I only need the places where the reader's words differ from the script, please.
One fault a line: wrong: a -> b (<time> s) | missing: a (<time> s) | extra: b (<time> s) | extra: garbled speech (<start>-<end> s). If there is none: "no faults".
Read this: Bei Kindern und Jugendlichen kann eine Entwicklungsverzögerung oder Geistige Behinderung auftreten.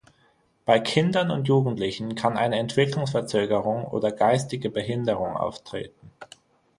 no faults